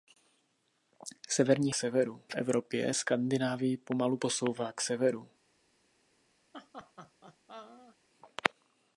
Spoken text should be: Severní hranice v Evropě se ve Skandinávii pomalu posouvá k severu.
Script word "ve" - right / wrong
wrong